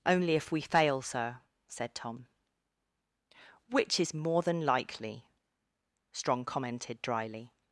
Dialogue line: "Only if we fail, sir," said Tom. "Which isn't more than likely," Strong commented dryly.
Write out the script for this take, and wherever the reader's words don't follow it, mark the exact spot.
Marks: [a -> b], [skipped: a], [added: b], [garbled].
"Only if we fail, sir," said Tom. "Which [isn't -> is] more than likely," Strong commented dryly.